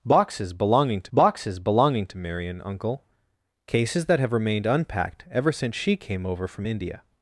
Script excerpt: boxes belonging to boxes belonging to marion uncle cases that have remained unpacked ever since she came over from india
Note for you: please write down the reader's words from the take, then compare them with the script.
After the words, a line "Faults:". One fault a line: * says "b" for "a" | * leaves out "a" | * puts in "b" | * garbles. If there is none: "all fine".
boxes belonging to boxes belonging to marion uncle cases that have remained unpacked ever since she came over from india
Faults:
all fine